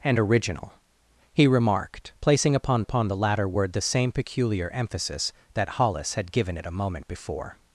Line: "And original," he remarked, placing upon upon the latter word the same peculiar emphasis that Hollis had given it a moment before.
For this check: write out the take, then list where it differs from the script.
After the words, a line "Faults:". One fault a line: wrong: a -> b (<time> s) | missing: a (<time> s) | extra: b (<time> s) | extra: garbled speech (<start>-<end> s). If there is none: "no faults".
"And original," he remarked, placing upon upon the latter word the same peculiar emphasis that Hollis had given it a moment before.
Faults:
no faults